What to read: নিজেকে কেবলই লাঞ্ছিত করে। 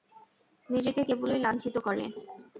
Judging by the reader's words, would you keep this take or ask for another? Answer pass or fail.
pass